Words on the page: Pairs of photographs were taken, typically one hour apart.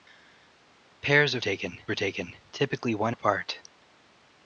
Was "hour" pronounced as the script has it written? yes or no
no